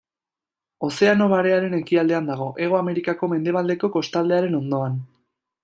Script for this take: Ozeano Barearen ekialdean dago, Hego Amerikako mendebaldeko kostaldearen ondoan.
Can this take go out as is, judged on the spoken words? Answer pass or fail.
pass